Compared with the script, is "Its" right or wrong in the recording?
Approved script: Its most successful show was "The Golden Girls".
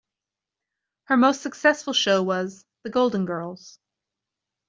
wrong